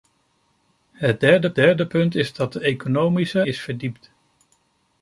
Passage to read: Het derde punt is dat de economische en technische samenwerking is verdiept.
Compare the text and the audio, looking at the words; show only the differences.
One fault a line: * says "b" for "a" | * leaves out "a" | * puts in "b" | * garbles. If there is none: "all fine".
* puts in "derde"
* leaves out "en technische samenwerking"